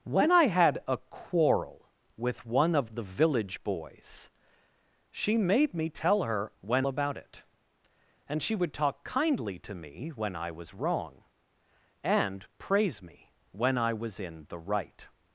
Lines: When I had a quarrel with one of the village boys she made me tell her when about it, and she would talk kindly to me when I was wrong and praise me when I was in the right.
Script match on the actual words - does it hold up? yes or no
yes